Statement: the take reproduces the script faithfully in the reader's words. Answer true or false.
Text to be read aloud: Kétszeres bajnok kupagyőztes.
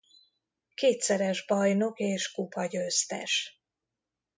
false